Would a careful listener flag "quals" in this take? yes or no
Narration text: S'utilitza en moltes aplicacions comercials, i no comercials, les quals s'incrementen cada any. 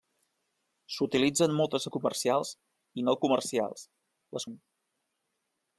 yes